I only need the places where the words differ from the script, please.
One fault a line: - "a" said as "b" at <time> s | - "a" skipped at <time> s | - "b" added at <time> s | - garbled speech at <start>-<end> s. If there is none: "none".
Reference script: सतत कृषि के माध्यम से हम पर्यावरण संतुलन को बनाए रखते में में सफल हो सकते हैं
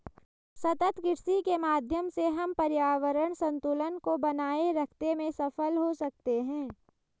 - "में" skipped at 5.3 s